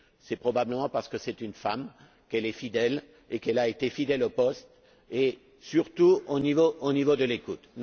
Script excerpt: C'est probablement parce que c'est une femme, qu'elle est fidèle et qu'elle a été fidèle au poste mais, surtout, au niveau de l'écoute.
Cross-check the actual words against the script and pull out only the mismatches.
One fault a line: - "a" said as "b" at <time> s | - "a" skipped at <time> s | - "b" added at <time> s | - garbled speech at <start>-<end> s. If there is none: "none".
- "mais" said as "et" at 5.1 s